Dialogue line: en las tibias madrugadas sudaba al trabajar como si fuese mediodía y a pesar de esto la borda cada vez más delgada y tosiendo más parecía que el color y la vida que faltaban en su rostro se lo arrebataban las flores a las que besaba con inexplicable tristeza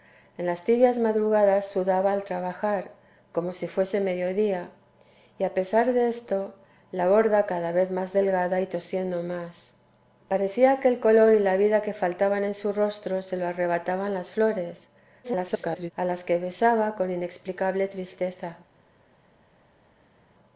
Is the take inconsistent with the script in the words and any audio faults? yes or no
yes